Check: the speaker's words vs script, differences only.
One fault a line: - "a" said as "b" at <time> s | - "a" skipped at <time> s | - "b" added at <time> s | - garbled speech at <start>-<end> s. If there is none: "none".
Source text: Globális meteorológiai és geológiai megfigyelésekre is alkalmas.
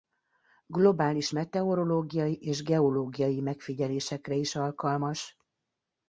none